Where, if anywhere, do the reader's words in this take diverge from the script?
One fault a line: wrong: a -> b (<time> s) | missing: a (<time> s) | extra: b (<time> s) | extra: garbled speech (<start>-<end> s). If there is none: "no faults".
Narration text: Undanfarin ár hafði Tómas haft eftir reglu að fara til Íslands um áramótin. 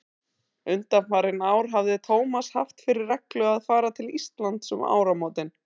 wrong: eftir -> fyrir (2.9 s)